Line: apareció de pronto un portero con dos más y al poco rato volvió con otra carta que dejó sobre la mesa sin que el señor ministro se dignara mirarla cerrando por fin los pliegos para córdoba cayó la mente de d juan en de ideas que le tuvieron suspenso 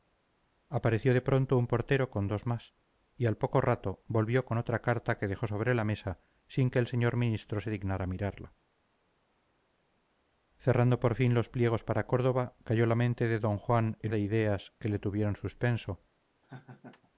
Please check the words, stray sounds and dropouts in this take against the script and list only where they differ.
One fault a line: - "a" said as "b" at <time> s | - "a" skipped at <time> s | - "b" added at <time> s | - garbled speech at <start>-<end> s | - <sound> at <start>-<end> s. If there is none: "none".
- laugh at 16.4-17.1 s